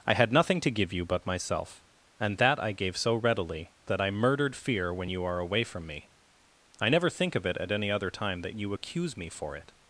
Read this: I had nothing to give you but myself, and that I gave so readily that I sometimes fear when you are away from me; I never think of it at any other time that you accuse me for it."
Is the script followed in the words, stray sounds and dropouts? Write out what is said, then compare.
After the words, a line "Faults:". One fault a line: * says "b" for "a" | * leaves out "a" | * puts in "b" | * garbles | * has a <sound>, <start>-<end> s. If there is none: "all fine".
I had nothing to give you but myself, and that I gave so readily that I murdered fear when you are away from me; I never think of it at any other time that you accuse me for it."
Faults:
* says "murdered" for "sometimes"